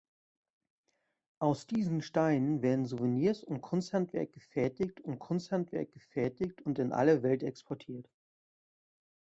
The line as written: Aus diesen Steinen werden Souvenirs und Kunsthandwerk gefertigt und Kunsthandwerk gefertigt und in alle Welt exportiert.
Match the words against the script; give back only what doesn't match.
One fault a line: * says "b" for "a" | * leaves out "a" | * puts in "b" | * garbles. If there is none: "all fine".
all fine